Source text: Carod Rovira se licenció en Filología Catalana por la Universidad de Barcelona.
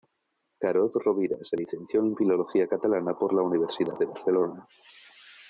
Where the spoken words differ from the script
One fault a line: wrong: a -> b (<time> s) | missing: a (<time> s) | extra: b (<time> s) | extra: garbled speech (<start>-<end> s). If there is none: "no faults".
no faults